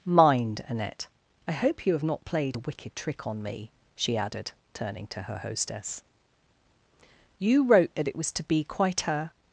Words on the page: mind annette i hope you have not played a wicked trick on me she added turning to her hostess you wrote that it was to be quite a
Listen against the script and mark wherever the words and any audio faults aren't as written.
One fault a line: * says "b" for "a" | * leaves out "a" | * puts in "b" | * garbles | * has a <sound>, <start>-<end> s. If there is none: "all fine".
all fine